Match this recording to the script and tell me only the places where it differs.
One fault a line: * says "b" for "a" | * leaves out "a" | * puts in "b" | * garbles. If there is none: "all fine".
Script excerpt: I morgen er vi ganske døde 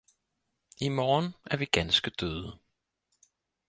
all fine